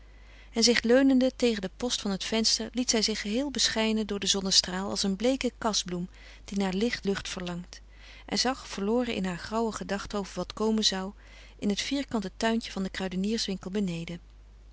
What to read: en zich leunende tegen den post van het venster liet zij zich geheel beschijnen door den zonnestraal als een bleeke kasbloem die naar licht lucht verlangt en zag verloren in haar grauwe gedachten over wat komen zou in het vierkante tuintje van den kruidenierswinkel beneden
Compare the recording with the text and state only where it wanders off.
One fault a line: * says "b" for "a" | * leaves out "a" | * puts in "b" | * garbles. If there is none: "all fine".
all fine